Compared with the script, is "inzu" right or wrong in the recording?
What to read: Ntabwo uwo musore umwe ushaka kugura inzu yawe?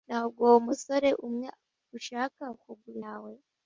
wrong